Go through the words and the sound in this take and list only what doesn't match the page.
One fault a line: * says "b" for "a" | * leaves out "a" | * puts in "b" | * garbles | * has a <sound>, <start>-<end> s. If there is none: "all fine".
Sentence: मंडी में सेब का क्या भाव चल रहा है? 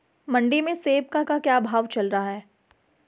* puts in "का"